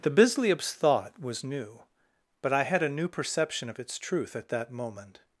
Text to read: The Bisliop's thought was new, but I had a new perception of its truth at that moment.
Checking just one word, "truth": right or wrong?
right